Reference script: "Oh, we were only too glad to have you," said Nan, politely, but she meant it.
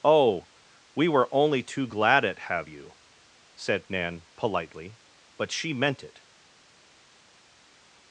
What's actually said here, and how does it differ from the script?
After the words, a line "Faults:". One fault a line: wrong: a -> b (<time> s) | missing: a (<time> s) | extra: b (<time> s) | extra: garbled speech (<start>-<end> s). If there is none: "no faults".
"Oh, we were only too glad at have you," said Nan, politely, but she meant it.
Faults:
wrong: to -> at (2.2 s)